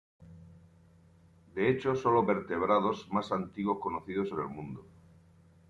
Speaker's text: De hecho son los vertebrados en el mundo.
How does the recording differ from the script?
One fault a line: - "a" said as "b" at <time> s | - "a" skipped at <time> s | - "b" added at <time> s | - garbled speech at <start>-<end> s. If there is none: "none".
- "más antiguos conocidos" added at 3.1 s